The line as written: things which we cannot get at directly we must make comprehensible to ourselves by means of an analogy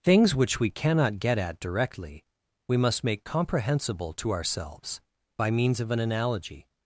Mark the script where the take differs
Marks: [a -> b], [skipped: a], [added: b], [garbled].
things which we cannot get at directly we must make comprehensible to ourselves by means of an analogy